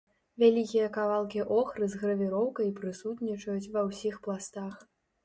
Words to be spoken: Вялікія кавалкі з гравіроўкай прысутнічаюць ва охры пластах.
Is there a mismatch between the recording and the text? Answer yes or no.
yes